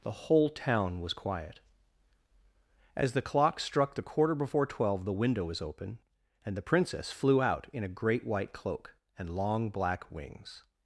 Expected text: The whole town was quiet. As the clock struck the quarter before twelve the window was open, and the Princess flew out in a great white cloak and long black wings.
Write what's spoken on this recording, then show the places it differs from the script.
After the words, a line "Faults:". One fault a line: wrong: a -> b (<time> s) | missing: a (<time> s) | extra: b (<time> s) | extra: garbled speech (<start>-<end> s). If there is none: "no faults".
The whole town was quiet. As the clock struck the quarter before twelve the window was open, and the Princess flew out in a great white cloak and long black wings.
Faults:
no faults